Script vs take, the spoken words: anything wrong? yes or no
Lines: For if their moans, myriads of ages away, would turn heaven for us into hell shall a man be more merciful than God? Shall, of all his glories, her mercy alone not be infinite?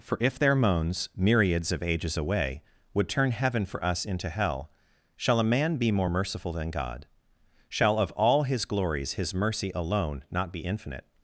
yes